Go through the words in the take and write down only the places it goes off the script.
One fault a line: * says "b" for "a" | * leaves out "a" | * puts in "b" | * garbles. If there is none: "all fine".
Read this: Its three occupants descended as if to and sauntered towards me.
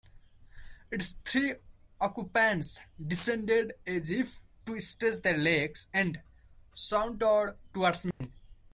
* puts in "stretch their legs"